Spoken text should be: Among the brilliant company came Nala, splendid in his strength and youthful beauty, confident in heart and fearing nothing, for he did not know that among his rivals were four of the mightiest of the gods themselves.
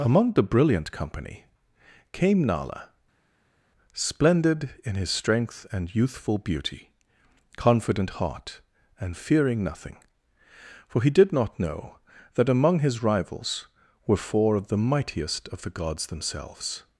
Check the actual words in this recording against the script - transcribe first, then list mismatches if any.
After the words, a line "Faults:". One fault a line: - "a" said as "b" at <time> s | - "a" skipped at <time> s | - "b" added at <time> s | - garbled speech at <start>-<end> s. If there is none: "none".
Among the brilliant company came Nala, splendid in his strength and youthful beauty, confident heart and fearing nothing, for he did not know that among his rivals were four of the mightiest of the gods themselves.
Faults:
- "in" skipped at 8.1 s